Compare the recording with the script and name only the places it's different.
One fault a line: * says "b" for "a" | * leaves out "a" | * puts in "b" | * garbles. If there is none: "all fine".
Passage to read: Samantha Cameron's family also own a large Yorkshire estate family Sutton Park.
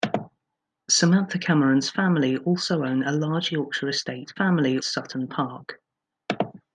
all fine